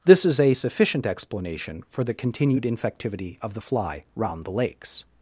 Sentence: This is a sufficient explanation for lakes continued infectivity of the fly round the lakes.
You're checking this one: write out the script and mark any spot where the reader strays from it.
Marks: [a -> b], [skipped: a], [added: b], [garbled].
This is a sufficient explanation for [lakes -> the] continued infectivity of the fly round the lakes.